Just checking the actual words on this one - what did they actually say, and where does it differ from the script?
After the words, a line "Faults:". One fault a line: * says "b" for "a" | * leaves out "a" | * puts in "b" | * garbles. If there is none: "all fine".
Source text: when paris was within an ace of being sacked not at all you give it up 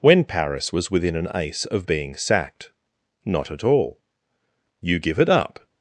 when paris was within an ace of being sacked not at all you give it up
Faults:
all fine